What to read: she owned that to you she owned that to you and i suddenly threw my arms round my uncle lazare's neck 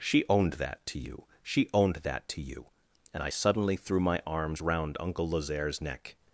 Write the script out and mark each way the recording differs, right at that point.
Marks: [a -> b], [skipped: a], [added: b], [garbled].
she owned that to you she owned that to you and i suddenly threw my arms round [skipped: my] uncle lazare's neck